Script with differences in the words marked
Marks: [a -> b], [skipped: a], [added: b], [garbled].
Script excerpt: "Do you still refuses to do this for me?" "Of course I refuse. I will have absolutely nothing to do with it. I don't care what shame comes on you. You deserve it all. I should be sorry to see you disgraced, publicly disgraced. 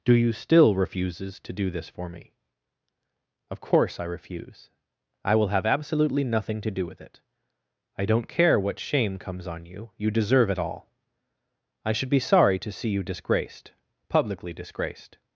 "Do you still refuses to do this for me?" "Of course I refuse. I will have absolutely nothing to do with it. I don't care what shame comes on you. You deserve it all. I should be sorry to see you disgraced, publicly disgraced.